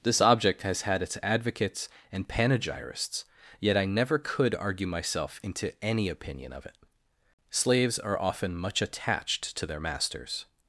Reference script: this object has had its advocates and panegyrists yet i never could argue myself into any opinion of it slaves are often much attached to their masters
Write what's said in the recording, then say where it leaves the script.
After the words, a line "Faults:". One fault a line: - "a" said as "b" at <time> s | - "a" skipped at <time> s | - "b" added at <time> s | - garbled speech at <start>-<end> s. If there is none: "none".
this object has had its advocates and panegyrists yet i never could argue myself into any opinion of it slaves are often much attached to their masters
Faults:
none